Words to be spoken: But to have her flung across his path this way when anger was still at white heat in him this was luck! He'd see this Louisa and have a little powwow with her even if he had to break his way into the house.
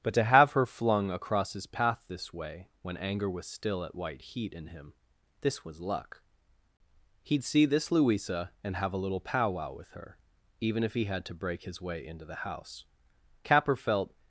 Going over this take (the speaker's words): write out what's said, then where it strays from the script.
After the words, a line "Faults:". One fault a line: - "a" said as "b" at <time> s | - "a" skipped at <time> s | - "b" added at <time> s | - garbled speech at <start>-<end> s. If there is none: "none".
But to have her flung across his path this way when anger was still at white heat in him this was luck! He'd see this Louisa and have a little powwow with her even if he had to break his way into the house. Capper felt
Faults:
- "Capper felt" added at 13.4 s